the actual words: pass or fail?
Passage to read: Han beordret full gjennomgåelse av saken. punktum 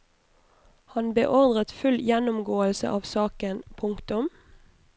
pass